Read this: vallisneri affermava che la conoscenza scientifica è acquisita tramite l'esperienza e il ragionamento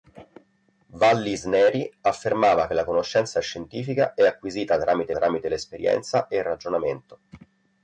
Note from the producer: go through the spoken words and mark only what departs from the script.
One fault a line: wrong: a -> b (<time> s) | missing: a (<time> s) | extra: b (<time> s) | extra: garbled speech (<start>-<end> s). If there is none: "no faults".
extra: tramite (5.1 s)